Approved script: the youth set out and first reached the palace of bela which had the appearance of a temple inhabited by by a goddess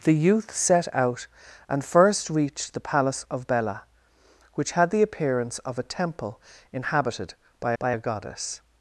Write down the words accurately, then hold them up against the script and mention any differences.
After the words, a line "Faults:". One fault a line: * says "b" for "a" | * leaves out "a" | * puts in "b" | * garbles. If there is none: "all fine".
the youth set out and first reached the palace of bela which had the appearance of a temple inhabited by by a goddess
Faults:
all fine